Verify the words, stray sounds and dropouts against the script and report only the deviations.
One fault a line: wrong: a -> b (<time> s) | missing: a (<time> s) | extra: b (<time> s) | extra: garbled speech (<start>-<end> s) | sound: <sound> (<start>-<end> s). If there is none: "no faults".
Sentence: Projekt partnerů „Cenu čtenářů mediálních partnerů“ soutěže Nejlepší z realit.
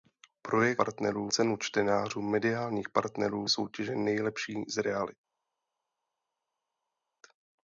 no faults